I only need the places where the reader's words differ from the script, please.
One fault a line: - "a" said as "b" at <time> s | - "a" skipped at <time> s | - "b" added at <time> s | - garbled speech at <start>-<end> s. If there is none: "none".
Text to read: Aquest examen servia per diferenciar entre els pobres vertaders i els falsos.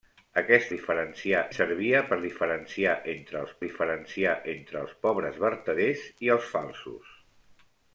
- "examen" said as "diferenciar" at 0.7 s
- "diferenciar entre els" added at 3.6 s